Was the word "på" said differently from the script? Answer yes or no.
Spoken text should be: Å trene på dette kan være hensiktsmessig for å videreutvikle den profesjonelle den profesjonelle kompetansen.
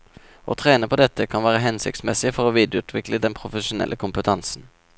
no